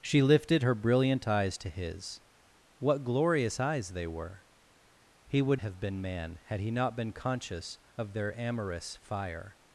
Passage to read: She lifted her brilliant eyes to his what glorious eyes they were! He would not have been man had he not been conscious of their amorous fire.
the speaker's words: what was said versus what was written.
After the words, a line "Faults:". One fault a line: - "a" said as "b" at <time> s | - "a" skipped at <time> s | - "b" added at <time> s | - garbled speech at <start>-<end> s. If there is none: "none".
She lifted her brilliant eyes to his what glorious eyes they were! He would have been man had he not been conscious of their amorous fire.
Faults:
- "not" skipped at 5.6 s